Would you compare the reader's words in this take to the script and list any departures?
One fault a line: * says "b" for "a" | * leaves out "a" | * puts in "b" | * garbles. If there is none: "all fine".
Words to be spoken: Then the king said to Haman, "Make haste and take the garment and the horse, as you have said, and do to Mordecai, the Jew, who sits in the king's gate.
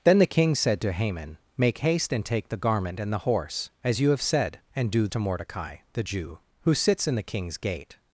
all fine